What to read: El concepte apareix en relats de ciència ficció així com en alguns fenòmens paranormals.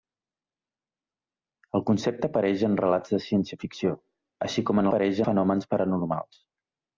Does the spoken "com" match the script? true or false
true